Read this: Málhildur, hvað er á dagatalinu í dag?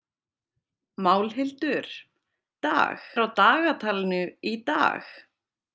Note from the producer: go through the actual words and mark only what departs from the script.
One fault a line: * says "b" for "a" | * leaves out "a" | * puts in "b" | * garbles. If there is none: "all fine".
* says "dag" for "hvað"